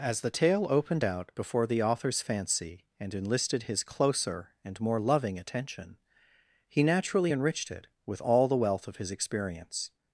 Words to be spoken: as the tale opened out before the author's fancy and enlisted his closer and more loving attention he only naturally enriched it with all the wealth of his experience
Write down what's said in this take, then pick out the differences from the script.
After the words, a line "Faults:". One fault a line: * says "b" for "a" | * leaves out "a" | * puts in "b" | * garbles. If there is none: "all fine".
as the tale opened out before the author's fancy and enlisted his closer and more loving attention he naturally enriched it with all the wealth of his experience
Faults:
* leaves out "only"